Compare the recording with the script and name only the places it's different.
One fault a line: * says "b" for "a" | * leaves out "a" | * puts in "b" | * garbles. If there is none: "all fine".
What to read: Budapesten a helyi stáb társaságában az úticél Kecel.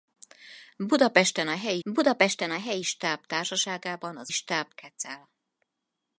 * puts in "budapesten a helyi"
* says "stáb" for "úticél"